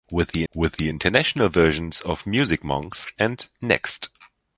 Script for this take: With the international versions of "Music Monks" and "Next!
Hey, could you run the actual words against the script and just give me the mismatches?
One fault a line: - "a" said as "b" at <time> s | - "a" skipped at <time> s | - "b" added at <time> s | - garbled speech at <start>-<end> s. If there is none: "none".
- "with the" added at 0.5 s